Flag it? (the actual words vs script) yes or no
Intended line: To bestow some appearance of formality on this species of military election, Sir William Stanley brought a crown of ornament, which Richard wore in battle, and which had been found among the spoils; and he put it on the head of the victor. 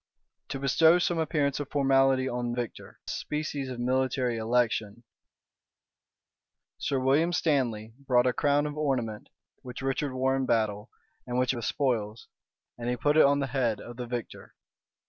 yes